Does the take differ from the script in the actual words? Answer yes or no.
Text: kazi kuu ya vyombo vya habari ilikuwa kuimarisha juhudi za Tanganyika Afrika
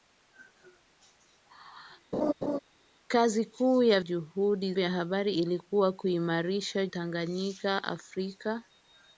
yes